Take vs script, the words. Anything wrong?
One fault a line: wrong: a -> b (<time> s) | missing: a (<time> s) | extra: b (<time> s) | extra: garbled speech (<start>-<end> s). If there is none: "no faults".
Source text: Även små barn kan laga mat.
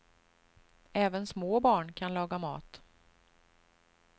no faults